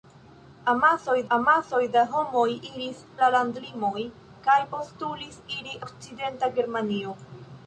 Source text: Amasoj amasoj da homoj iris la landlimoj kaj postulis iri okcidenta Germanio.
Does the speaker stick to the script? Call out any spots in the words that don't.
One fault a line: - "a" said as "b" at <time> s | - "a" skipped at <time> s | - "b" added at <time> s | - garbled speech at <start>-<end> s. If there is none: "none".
none